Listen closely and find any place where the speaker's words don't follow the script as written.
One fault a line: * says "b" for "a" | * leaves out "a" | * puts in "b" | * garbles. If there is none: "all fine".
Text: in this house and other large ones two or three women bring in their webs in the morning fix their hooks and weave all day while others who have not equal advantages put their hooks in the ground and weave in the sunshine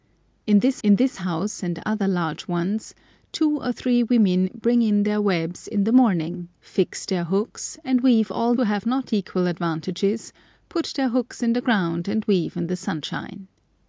* puts in "in this"
* leaves out "day while others"